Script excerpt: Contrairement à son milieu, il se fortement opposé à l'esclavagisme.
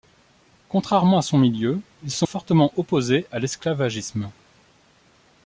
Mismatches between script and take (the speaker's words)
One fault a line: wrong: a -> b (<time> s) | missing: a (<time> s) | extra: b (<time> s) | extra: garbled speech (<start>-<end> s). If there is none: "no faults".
no faults